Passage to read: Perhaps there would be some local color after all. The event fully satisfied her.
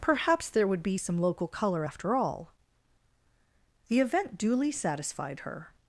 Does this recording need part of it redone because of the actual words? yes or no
yes